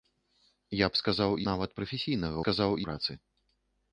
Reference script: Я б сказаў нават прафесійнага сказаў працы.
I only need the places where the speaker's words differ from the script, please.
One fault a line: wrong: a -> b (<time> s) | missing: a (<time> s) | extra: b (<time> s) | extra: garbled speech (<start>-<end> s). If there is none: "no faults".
no faults